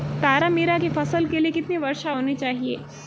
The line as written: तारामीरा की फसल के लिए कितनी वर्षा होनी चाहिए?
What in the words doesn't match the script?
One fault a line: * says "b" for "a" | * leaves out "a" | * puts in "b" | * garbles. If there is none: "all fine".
all fine